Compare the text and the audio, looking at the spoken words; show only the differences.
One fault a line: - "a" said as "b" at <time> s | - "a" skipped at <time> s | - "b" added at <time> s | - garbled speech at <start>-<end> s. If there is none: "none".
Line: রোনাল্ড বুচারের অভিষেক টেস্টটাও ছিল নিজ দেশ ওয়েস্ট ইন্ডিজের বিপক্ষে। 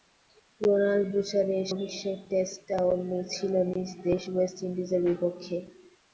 none